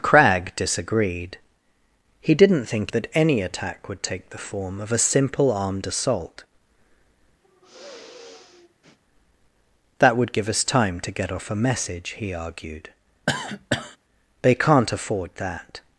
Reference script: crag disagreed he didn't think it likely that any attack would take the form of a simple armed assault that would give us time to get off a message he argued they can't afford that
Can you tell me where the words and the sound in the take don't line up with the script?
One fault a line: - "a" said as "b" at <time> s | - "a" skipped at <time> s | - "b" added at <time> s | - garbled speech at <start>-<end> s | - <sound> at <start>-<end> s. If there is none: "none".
- "it likely" skipped at 2.9 s
- sigh at 7.4-9.0 s
- cough at 13.3-14.0 s